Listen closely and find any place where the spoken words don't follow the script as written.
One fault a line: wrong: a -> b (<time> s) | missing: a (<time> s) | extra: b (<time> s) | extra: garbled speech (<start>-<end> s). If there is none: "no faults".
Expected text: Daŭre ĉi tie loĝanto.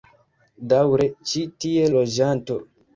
no faults